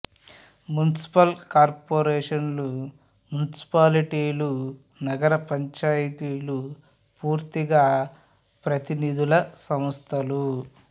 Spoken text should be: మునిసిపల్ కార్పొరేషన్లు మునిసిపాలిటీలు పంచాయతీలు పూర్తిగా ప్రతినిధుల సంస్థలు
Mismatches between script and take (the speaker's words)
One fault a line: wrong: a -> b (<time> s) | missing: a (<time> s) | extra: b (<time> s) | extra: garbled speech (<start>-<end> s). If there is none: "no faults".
extra: నగర (5.0 s)